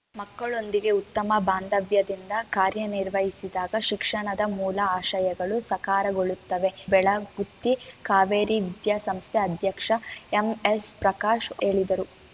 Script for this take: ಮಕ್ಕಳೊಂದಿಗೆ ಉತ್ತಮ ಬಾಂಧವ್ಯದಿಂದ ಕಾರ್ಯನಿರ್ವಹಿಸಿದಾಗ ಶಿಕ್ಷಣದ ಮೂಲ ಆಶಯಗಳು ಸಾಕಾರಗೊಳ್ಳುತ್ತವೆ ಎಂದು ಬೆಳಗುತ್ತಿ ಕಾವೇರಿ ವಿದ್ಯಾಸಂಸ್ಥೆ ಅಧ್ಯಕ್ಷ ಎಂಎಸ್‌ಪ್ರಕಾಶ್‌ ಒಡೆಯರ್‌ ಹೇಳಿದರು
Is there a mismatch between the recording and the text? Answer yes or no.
yes